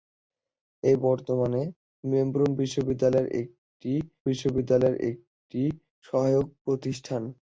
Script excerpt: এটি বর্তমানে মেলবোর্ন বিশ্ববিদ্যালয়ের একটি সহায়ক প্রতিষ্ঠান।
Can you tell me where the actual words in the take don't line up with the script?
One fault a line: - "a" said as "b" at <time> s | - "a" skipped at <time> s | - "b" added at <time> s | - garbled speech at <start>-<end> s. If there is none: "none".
- "বিশ্ববিদ্যালয়ের একটি" added at 4.3 s